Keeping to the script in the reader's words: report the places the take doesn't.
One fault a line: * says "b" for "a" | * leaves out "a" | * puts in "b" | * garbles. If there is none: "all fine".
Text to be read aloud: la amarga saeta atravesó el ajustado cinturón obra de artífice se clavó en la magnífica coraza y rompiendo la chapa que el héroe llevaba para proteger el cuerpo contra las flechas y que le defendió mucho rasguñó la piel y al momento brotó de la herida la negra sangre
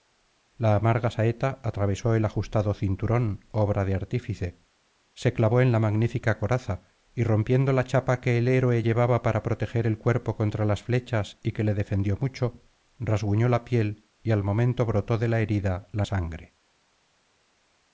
* leaves out "negra"